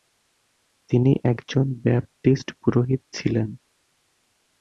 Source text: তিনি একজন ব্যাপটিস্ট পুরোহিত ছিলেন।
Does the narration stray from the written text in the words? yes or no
no